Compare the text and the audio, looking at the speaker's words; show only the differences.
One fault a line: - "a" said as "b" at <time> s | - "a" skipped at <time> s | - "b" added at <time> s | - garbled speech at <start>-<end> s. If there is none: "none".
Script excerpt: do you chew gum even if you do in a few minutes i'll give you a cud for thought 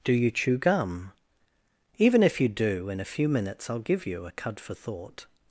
none